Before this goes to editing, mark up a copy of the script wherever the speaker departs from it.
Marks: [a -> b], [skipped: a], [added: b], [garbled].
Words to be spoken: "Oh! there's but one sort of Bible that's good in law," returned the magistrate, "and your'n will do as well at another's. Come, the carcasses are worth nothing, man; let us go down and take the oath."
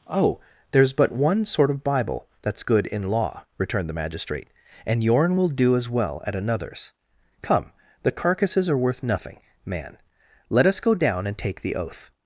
"Oh! there's but one sort of Bible that's good in law," returned the magistrate, "and your'n will do as well at another's. Come, the carcasses are worth nothing, man; let us go down and take the oath."